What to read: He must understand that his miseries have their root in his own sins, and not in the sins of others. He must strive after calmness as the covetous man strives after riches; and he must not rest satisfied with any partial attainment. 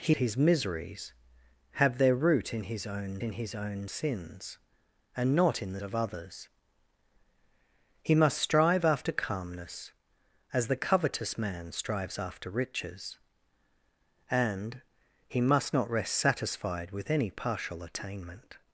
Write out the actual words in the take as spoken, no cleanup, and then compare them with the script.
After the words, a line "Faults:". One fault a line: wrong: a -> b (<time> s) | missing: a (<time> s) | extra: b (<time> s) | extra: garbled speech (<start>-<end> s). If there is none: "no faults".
He his miseries have their root in his own in his own sins, and not in the of others. He must strive after calmness as the covetous man strives after riches; and he must not rest satisfied with any partial attainment.
Faults:
missing: must understand that (0.1 s)
extra: in his own (3.2 s)
missing: sins (5.8 s)